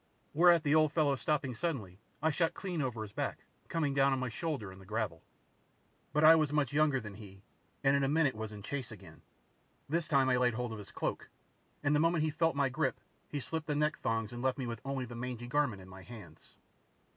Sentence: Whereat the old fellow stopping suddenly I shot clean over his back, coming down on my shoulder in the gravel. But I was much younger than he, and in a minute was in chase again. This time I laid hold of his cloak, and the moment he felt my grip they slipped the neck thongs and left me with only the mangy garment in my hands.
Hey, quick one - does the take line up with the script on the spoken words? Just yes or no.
no